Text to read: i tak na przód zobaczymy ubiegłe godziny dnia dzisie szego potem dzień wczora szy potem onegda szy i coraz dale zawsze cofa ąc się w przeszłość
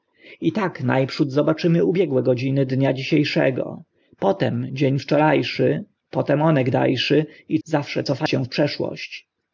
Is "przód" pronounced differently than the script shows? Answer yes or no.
no